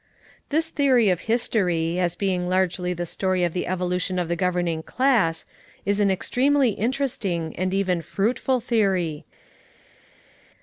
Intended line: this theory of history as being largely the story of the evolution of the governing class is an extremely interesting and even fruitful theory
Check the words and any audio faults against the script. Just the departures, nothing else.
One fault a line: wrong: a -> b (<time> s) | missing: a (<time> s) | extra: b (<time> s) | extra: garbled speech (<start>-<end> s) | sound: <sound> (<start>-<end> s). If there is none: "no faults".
no faults